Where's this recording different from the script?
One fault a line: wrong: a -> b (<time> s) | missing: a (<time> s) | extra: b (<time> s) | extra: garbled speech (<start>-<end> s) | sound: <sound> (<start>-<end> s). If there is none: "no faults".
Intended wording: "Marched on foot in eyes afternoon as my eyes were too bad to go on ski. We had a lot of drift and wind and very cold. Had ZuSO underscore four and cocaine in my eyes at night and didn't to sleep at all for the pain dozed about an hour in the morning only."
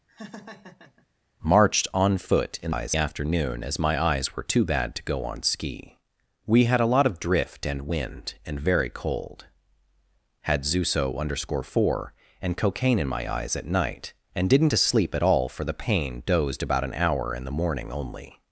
sound: laugh (0.1-1.1 s)